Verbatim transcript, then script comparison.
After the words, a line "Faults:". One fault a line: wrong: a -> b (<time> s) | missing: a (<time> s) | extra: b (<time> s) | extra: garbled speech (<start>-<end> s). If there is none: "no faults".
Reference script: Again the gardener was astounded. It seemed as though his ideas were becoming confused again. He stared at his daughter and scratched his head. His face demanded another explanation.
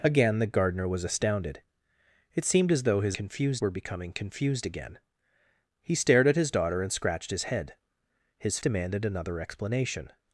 Again the gardener was astounded. It seemed as though his confused were becoming confused again. He stared at his daughter and scratched his head. His demanded another explanation.
Faults:
wrong: ideas -> confused (3.1 s)
missing: face (8.6 s)